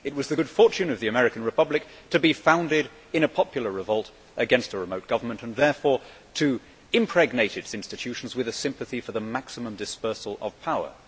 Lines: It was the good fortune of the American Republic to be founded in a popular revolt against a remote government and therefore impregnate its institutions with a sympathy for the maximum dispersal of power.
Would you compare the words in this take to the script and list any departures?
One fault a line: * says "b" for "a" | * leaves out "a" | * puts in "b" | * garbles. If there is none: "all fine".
* puts in "to"